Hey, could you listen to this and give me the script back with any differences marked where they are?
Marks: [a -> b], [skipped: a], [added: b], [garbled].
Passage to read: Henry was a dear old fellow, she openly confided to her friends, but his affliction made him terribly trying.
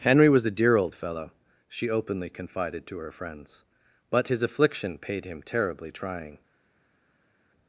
Henry was a dear old fellow, she openly confided to her friends, but his affliction [made -> paid] him terribly trying.